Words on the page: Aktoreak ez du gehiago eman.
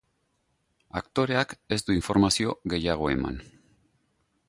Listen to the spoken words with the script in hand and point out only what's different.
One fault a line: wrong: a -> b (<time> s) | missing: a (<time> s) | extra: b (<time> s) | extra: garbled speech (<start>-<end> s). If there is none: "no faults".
extra: informazio (2.0 s)